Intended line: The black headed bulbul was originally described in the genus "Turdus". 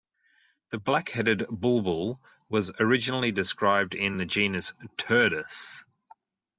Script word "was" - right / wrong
right